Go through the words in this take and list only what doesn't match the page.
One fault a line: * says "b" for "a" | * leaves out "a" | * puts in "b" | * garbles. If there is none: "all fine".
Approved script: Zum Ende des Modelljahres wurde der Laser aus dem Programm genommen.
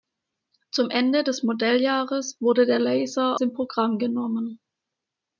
* leaves out "aus"